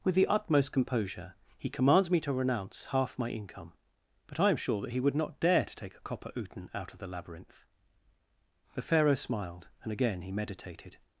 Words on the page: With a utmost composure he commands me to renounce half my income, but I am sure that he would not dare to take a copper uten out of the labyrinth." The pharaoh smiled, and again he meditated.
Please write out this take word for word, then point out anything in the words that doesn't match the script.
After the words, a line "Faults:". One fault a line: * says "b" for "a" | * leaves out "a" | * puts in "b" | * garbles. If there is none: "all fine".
With the utmost composure he commands me to renounce half my income, but I am sure that he would not dare to take a copper uten out of the labyrinth." The pharaoh smiled, and again he meditated.
Faults:
* says "the" for "a"